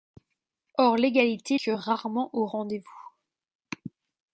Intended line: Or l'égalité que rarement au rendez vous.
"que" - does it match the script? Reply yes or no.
yes